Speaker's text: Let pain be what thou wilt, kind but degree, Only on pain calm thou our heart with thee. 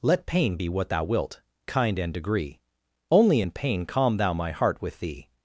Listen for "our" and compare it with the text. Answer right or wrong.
wrong